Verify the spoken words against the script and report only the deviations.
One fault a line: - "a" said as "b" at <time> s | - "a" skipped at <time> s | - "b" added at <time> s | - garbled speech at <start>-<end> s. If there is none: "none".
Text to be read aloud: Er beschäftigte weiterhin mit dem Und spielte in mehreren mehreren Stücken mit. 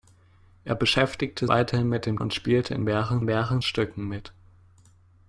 none